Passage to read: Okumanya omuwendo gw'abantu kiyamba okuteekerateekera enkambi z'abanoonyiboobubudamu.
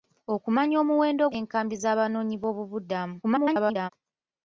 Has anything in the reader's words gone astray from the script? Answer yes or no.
yes